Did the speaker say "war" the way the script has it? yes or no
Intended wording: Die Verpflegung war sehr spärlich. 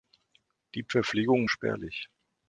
no